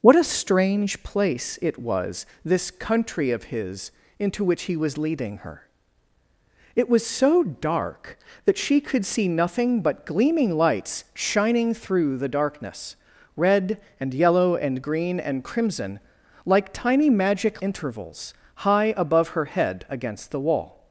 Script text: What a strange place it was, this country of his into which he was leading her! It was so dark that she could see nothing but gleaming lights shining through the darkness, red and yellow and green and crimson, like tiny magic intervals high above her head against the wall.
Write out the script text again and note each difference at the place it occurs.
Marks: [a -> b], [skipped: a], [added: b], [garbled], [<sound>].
What a strange place it was, this country of his into which he was leading her! It was so dark that she could see nothing but gleaming lights shining through the darkness, red and yellow and green and crimson, like tiny magic intervals high above her head against the wall.